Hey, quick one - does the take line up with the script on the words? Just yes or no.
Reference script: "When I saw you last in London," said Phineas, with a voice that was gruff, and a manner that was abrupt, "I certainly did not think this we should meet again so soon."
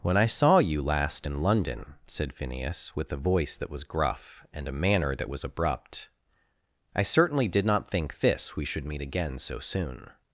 yes